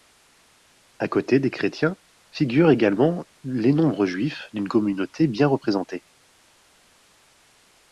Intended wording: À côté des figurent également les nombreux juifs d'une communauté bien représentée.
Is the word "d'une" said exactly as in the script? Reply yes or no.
yes